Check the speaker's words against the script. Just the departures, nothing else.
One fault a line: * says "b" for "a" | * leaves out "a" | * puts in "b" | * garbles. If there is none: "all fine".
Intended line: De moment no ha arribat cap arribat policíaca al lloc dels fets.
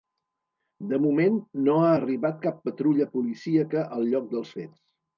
* says "patrulla" for "arribat"